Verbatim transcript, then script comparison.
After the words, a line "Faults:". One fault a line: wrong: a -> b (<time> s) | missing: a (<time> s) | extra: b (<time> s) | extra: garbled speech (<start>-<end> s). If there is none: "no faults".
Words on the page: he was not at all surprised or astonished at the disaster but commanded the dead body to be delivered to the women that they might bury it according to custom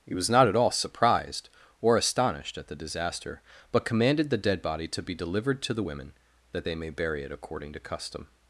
he was not at all surprised or astonished at the disaster but commanded the dead body to be delivered to the women that they may bury it according to custom
Faults:
wrong: might -> may (6.7 s)